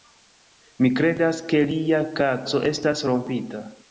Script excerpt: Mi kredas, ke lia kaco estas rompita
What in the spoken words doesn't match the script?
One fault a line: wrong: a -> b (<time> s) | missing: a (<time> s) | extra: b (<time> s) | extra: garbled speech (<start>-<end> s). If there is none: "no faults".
no faults